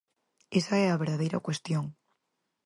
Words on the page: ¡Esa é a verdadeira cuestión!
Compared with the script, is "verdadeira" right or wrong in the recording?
right